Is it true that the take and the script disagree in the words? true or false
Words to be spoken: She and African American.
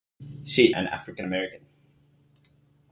false